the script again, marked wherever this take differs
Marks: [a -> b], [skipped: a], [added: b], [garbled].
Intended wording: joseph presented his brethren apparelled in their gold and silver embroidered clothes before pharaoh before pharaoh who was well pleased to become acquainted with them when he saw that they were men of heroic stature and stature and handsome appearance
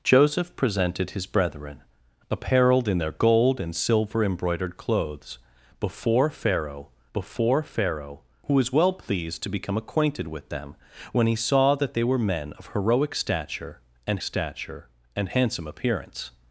joseph presented his brethren apparelled in their gold and silver embroidered clothes before pharaoh before pharaoh who was well pleased to become acquainted with them when he saw that they were men of heroic stature and stature and handsome appearance